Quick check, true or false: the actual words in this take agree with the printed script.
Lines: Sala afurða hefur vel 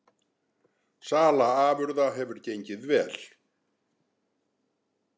false